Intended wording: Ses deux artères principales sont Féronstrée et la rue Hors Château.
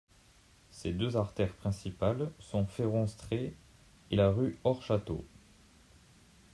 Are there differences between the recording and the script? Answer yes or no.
no